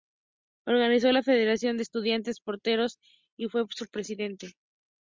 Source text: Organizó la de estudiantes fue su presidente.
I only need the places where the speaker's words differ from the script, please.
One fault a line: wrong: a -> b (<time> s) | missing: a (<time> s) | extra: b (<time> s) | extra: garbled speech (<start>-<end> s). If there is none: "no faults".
extra: federación (1.2 s)
extra: porteños y (2.4 s)